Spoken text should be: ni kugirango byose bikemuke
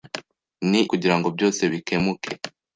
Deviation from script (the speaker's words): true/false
false